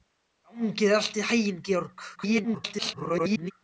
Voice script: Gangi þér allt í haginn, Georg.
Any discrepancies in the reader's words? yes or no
yes